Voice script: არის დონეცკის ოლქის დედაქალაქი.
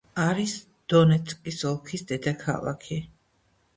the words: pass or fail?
pass